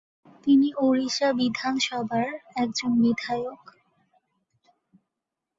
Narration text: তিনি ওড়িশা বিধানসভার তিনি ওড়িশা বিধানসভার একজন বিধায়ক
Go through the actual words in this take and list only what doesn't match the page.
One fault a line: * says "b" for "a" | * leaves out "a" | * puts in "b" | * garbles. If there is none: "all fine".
* leaves out "তিনি ওড়িশা বিধানসভার"